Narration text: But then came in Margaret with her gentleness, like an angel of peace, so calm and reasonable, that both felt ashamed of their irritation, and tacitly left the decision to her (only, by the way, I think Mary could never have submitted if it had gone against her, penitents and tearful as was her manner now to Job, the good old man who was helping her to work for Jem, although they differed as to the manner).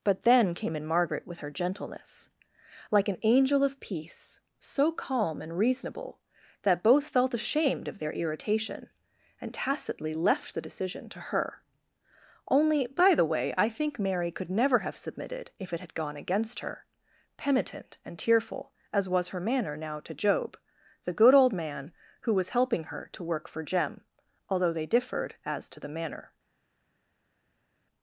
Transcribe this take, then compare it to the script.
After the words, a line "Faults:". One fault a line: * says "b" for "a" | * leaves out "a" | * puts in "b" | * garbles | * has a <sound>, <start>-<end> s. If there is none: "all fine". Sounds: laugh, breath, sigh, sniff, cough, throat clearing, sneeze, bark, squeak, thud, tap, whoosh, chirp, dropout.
But then came in Margaret with her gentleness, like an angel of peace, so calm and reasonable, that both felt ashamed of their irritation, and tacitly left the decision to her (only, by the way, I think Mary could never have submitted if it had gone against her, penitent and tearful as was her manner now to Job, the good old man who was helping her to work for Jem, although they differed as to the manner).
Faults:
* says "penitent" for "penitents"